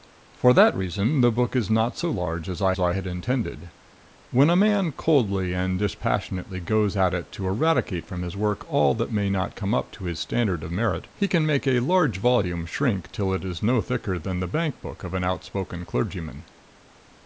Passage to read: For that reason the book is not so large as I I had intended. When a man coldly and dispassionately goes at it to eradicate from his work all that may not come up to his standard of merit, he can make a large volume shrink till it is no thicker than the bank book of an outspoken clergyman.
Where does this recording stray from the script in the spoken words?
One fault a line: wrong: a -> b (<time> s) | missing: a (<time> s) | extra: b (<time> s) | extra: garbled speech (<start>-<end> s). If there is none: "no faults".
no faults